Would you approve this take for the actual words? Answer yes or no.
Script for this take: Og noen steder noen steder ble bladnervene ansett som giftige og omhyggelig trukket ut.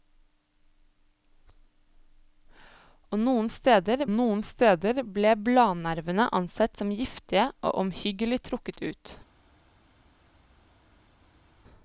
yes